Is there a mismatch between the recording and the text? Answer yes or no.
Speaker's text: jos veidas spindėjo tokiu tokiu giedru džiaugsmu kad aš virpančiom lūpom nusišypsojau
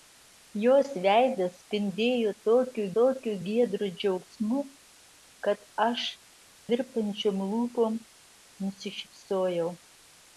no